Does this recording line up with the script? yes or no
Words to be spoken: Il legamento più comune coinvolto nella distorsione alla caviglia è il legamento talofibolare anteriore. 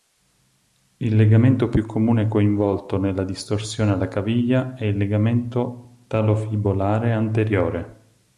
yes